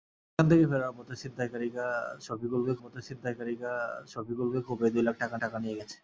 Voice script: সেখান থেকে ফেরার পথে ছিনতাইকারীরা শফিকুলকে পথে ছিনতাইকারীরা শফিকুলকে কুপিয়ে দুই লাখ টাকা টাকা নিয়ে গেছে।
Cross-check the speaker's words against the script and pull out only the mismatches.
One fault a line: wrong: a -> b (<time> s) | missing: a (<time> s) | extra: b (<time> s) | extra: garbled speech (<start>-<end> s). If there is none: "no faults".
no faults